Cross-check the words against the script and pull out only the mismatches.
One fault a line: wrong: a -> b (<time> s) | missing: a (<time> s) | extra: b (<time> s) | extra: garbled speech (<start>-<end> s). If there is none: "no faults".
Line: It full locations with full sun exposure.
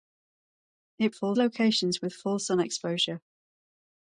no faults